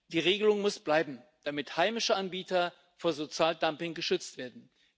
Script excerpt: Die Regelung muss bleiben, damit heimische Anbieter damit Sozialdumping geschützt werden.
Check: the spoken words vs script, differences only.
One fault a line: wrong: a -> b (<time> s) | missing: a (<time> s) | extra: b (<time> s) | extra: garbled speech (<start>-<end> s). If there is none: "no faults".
wrong: damit -> vor (3.0 s)